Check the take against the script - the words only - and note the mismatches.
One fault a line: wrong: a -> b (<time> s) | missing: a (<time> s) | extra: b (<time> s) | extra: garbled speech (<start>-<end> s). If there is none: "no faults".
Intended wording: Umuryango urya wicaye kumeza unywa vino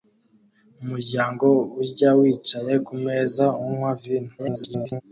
extra: garbled speech (4.4-5.0 s)